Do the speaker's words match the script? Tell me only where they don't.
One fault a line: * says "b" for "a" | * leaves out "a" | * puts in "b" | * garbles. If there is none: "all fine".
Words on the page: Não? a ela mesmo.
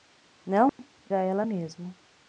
all fine